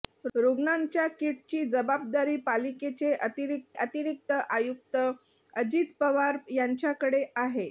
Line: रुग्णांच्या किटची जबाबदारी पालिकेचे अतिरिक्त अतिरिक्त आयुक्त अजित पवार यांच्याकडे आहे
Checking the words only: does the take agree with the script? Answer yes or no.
yes